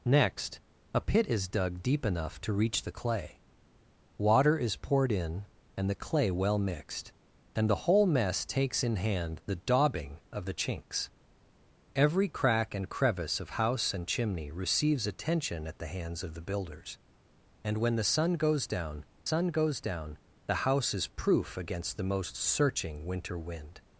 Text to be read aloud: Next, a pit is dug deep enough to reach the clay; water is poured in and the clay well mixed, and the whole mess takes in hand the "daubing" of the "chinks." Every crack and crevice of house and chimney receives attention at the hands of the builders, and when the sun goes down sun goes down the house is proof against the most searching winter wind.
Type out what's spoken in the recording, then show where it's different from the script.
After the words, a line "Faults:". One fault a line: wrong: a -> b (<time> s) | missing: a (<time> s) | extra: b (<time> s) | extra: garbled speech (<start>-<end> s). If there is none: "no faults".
Next, a pit is dug deep enough to reach the clay; water is poured in and the clay well mixed, and the whole mess takes in hand the "daubing" of the "chinks." Every crack and crevice of house and chimney receives attention at the hands of the builders, and when the sun goes down sun goes down the house is proof against the most searching winter wind.
Faults:
no faults